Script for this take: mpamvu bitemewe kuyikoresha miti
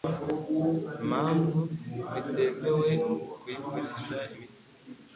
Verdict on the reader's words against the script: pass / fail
pass